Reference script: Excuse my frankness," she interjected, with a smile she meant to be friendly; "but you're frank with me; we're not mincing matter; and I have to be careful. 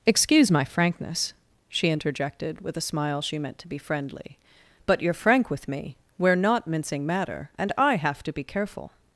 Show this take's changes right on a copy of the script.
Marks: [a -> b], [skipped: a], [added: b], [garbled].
Excuse my frankness," she interjected, with a smile she meant to be friendly; "but you're frank with me; we're not mincing matter; and I have to be careful.